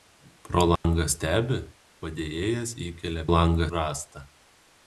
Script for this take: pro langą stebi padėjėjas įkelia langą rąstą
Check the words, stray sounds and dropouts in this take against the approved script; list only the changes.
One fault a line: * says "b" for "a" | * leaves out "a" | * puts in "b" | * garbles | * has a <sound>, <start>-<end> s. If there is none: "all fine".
* has a dropout, 0.8-0.8 s